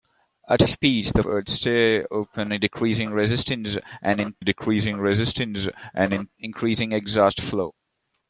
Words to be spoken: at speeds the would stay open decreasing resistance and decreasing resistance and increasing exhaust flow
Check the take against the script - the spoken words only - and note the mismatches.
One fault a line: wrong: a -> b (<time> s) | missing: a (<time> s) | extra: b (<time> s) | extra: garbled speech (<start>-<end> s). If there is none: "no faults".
no faults